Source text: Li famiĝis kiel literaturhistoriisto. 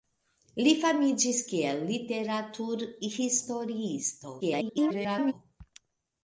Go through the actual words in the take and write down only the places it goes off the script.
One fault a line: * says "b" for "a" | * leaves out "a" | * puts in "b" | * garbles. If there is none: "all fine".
* garbles